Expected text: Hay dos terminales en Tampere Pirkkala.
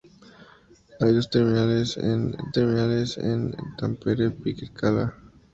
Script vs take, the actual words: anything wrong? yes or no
yes